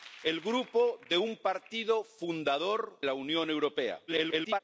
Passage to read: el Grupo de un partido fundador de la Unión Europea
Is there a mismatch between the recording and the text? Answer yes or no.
yes